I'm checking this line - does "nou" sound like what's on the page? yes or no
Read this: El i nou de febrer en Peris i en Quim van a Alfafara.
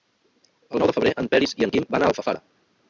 yes